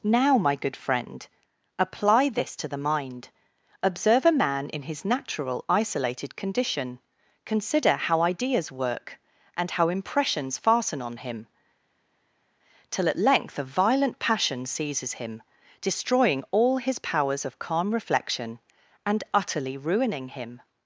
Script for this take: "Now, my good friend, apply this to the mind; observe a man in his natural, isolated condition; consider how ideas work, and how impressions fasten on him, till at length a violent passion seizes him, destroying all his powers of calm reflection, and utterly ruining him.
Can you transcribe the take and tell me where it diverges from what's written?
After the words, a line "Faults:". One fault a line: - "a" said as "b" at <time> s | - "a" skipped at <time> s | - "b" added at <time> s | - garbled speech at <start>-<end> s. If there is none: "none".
"Now, my good friend, apply this to the mind; observe a man in his natural, isolated condition; consider how ideas work, and how impressions fasten on him, till at length a violent passion seizes him, destroying all his powers of calm reflection, and utterly ruining him.
Faults:
none